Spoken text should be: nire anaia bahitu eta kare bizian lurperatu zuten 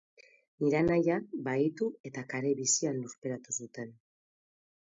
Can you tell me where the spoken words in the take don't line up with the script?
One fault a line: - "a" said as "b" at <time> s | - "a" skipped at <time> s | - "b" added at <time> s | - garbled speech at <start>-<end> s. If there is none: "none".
none